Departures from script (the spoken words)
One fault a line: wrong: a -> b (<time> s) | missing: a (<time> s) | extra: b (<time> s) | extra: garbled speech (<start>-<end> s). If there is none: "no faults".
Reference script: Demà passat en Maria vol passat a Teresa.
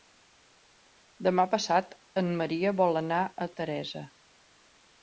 wrong: passat -> anar (3.0 s)